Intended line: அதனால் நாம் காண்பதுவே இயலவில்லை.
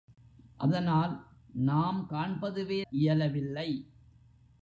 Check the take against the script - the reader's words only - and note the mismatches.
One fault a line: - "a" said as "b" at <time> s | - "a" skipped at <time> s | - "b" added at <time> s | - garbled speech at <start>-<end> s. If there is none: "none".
none